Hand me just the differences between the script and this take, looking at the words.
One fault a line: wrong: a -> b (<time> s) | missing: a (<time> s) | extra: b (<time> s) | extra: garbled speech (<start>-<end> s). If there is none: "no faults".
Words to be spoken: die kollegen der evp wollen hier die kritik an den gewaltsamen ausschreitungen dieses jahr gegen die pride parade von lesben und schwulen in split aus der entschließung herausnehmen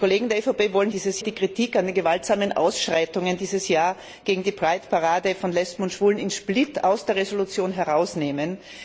wrong: hier -> dieses (0.9 s)